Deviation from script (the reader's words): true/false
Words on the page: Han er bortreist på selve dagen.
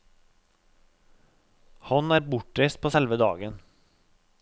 false